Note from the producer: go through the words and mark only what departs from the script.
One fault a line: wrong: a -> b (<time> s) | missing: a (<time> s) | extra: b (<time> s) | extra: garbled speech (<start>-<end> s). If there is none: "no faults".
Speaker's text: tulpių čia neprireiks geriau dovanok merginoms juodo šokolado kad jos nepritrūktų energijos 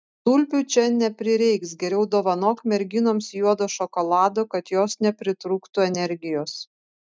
no faults